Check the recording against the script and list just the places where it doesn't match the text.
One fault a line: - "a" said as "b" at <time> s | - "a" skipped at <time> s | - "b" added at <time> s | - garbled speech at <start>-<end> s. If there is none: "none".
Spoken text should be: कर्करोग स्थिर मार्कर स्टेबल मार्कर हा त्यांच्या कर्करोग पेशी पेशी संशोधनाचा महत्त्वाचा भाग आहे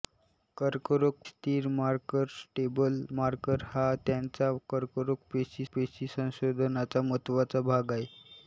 none